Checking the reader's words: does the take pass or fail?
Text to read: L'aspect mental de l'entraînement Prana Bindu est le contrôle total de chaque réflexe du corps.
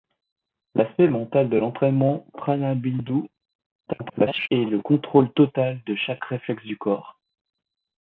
fail